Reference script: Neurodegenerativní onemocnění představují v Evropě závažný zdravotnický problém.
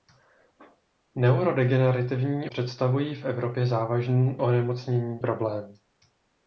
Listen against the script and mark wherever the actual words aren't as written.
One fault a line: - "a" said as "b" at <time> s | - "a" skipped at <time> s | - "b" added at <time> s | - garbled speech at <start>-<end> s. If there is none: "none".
- "onemocnění" skipped at 2.5 s
- "zdravotnický" said as "onemocnění" at 4.4 s